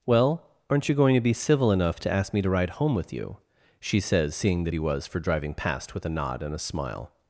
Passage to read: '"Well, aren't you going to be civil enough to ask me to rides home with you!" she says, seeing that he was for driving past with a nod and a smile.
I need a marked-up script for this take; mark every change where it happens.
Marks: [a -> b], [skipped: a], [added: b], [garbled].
'"Well, aren't you going to be civil enough to ask me to [rides -> ride] home with you!" she says, seeing that he was for driving past with a nod and a smile.